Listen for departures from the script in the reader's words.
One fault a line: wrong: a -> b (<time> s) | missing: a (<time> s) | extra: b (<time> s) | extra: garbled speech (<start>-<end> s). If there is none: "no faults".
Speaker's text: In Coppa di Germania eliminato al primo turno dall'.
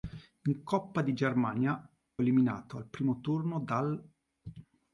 no faults